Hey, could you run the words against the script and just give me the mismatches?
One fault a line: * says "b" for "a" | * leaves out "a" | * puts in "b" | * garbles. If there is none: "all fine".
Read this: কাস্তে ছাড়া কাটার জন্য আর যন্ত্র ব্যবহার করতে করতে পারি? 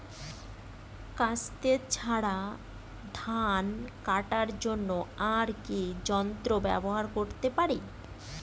* puts in "ধান"
* puts in "কি"
* leaves out "করতে"